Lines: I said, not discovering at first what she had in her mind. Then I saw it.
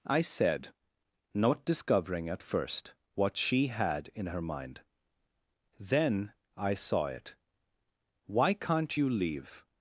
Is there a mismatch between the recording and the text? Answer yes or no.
yes